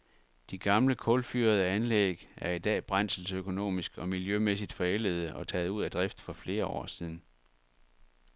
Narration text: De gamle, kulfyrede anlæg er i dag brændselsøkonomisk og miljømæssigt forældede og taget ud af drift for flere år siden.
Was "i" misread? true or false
false